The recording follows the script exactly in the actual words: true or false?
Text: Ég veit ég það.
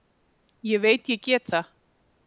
false